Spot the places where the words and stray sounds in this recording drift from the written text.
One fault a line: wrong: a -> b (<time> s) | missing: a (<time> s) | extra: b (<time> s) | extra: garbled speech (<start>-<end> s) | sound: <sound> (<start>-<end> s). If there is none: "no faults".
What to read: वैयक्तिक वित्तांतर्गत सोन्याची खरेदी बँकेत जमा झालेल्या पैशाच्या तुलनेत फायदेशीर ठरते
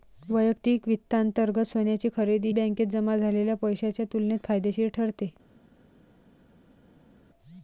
no faults